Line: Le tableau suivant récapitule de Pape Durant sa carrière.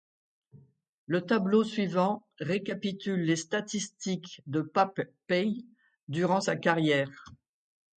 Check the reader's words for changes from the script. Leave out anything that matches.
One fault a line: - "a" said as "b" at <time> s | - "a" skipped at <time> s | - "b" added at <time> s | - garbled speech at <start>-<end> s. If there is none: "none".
- "les statistiques" added at 3.2 s
- "Paye" added at 5.3 s